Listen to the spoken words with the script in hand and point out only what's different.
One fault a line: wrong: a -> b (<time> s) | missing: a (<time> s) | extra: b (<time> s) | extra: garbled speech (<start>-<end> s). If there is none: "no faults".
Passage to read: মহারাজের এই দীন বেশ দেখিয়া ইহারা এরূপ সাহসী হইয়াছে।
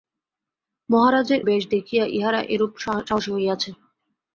missing: এই দীন (1.4 s)